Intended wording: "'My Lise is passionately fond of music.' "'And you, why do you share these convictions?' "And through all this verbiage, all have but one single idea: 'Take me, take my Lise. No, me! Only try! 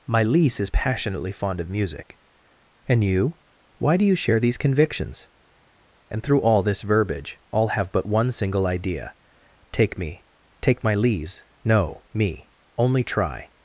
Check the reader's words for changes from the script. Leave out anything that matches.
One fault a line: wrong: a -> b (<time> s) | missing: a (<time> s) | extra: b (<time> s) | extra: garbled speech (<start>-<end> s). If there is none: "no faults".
no faults